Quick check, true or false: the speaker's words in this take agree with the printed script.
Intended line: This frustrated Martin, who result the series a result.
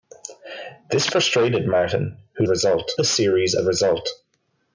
true